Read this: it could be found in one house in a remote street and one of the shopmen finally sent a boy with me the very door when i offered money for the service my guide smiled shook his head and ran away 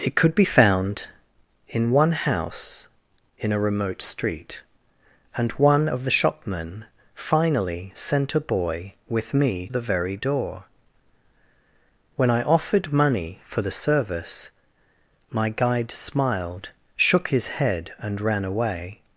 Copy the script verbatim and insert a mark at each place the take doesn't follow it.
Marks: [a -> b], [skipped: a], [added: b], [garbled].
it could be found in one house in a remote street and one of the shopmen finally sent a boy with me the very door when i offered money for the service my guide smiled shook his head and ran away